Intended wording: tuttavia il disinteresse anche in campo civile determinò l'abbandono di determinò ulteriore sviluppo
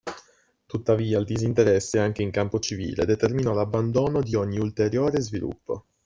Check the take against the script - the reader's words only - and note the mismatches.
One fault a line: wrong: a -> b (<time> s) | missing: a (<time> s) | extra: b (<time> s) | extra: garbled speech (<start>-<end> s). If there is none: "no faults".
wrong: determinò -> ogni (4.3 s)